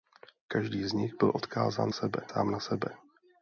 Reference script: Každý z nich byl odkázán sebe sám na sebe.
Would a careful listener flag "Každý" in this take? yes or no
no